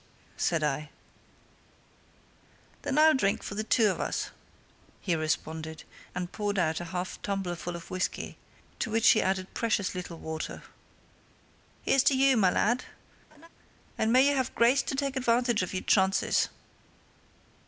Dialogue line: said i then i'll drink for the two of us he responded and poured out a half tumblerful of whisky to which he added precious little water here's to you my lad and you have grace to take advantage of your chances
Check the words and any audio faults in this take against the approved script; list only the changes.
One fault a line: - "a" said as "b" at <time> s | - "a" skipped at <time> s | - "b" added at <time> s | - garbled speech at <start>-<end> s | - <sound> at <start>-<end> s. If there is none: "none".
- laugh at 13.3-13.5 s
- "may" added at 14.1 s